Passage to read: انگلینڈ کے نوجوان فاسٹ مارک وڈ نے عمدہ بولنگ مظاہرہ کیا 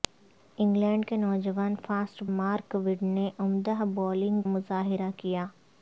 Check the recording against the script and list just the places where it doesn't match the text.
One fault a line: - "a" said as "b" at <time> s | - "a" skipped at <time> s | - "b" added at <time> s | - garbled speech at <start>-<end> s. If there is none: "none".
none